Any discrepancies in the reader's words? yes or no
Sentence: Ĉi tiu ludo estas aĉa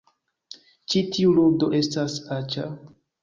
no